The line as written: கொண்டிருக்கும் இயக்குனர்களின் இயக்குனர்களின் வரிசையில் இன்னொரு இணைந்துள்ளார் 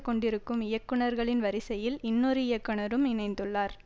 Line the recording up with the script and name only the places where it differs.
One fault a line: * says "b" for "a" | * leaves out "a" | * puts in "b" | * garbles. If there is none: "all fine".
* leaves out "இயக்குனர்களின்"
* puts in "இயக்குனரும்"